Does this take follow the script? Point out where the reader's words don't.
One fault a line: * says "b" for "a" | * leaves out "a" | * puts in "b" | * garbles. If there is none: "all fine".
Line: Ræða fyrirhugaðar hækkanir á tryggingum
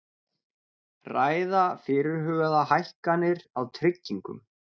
all fine